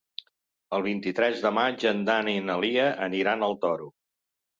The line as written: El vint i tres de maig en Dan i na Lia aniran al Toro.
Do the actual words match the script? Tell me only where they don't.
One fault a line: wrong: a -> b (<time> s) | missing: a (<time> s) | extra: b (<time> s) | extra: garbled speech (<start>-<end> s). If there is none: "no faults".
no faults